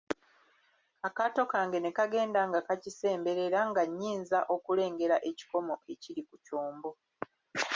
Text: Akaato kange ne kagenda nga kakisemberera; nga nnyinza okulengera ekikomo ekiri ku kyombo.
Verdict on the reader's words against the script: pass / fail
pass